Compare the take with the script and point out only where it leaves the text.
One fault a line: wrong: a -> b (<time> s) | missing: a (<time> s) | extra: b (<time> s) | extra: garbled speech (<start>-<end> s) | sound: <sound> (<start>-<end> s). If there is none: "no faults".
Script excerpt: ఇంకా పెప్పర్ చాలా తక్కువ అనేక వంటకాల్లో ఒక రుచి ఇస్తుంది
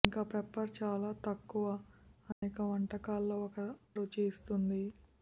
sound: dropout (2.3-2.4 s)